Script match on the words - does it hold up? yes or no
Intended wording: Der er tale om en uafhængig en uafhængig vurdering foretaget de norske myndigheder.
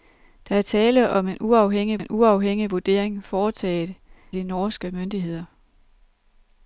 yes